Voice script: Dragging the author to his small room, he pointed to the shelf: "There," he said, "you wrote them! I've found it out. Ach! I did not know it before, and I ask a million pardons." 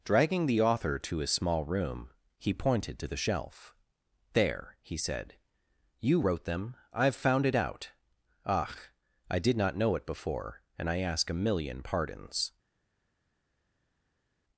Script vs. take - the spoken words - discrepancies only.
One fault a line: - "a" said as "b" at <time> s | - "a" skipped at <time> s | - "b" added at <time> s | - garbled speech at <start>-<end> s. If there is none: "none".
none